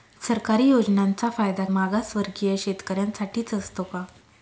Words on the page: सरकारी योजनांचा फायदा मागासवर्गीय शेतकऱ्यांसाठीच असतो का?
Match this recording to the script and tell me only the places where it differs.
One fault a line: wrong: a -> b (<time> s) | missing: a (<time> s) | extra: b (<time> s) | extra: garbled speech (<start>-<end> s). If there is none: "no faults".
no faults